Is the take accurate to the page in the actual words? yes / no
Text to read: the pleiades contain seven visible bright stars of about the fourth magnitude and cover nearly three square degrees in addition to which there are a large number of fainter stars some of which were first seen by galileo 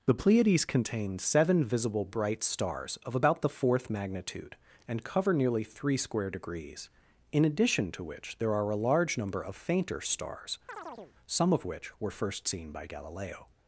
yes